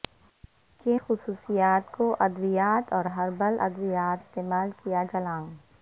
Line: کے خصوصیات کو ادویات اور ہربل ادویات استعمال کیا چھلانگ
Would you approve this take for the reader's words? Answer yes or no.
yes